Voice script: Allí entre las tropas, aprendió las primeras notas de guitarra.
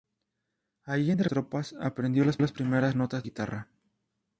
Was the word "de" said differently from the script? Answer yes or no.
yes